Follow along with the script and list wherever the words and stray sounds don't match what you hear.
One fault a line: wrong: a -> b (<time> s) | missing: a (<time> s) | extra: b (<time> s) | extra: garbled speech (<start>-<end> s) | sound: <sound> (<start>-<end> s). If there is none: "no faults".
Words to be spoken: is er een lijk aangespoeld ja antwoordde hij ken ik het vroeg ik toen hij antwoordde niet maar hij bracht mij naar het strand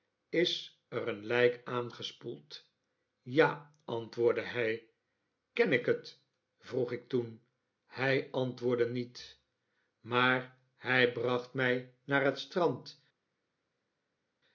no faults